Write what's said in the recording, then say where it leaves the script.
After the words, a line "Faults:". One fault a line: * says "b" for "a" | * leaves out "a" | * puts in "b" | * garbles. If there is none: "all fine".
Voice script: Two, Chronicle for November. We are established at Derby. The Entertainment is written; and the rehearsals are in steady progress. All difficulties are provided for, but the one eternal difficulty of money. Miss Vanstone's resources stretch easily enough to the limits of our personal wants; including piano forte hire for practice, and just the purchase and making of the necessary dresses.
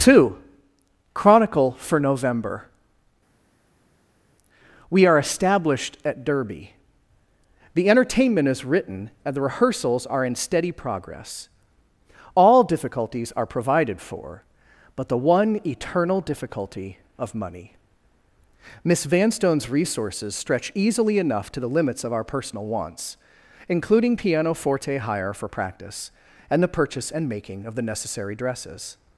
Two, Chronicle for November. We are established at Derby. The Entertainment is written; and the rehearsals are in steady progress. All difficulties are provided for, but the one eternal difficulty of money. Miss Vanstone's resources stretch easily enough to the limits of our personal wants; including piano forte hire for practice, and the purchase and making of the necessary dresses.
Faults:
* leaves out "just"